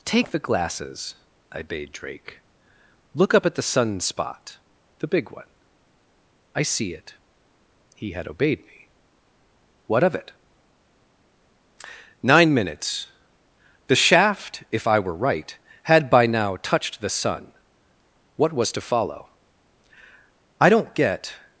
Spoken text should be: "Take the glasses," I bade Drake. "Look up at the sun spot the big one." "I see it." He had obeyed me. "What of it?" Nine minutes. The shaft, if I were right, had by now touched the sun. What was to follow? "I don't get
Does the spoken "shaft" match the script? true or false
true